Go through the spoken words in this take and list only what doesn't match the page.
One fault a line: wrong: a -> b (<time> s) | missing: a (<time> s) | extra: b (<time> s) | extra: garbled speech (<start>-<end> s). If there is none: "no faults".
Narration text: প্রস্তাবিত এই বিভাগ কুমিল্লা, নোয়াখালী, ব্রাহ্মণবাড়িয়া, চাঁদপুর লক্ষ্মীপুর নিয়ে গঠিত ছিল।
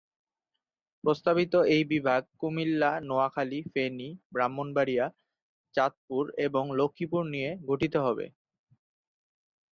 extra: ফেনী (3.7 s)
extra: এবং (6.5 s)
wrong: ছিল -> হবে (8.1 s)